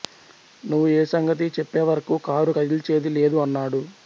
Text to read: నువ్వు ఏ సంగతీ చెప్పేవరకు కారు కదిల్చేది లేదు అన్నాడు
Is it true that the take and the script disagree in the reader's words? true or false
false